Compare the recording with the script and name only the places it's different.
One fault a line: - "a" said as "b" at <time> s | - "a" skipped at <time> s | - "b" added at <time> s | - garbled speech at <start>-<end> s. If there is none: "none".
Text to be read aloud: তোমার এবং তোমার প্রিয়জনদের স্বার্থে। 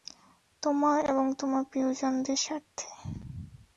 none